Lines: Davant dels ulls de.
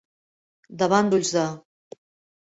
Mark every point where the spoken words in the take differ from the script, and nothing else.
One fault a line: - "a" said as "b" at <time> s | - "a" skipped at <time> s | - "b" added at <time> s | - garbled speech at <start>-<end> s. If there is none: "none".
- "dels" skipped at 1.1 s